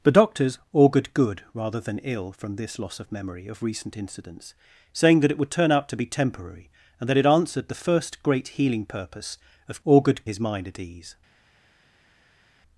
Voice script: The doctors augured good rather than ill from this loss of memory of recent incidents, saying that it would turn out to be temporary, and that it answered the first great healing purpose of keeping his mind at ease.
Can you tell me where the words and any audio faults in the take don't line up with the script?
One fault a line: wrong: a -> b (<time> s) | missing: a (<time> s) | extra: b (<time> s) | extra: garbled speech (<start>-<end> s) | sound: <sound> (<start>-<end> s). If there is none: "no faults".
wrong: keeping -> augured (9.8 s)